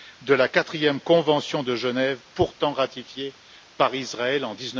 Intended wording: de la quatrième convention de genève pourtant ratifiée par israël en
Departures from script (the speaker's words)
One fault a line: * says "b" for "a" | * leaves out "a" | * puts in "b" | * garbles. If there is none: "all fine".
all fine